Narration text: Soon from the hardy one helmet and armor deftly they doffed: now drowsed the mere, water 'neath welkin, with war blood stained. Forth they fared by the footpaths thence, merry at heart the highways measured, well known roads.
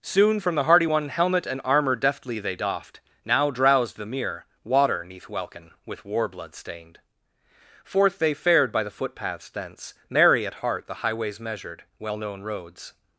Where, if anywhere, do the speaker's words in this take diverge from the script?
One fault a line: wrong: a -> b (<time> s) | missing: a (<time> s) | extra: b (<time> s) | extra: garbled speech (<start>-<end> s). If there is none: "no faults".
no faults